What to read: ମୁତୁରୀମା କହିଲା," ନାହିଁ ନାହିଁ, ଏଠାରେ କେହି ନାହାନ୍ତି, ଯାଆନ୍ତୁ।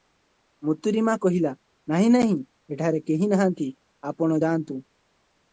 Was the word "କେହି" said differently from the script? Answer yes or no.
no